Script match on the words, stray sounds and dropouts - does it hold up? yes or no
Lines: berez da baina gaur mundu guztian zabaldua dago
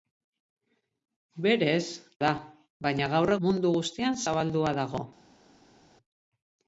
yes